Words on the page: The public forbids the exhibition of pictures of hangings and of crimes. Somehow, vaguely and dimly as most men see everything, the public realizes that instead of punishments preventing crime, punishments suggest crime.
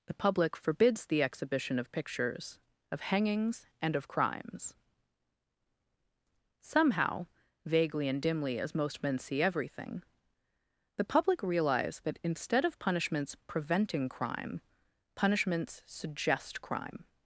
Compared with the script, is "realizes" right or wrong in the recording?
wrong